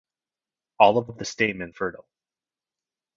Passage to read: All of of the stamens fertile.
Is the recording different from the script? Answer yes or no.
no